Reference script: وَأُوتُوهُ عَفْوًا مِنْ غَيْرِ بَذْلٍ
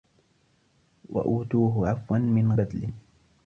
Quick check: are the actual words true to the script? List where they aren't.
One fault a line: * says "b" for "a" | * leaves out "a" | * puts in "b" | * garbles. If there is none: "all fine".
* leaves out "غَيْرِ"